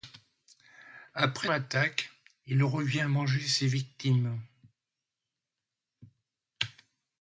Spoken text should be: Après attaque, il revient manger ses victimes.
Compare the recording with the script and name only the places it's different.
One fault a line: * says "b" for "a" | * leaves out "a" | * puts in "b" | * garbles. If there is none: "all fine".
all fine